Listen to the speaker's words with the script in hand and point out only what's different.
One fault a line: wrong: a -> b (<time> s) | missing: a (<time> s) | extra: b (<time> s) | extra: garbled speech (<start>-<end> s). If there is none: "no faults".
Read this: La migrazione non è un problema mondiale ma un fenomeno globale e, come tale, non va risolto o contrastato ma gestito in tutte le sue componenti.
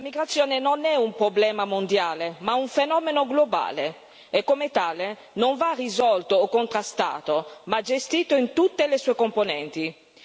no faults